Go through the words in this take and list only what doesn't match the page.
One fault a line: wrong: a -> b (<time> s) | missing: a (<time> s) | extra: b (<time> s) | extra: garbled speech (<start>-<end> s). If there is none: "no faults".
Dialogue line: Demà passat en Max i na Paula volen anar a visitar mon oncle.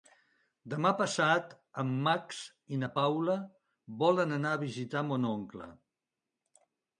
no faults